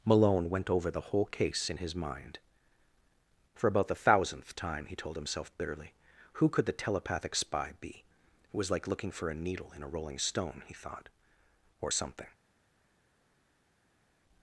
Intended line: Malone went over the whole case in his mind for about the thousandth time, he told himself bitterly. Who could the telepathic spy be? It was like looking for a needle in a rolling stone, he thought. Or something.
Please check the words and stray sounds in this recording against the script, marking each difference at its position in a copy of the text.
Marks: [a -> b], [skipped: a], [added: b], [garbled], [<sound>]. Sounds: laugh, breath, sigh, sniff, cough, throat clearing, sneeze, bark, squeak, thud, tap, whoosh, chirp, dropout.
Malone went over the whole case in his mind for about the thousandth time, he told himself bitterly. Who could the telepathic spy be? It was like looking for a needle in a rolling stone, he thought. Or something.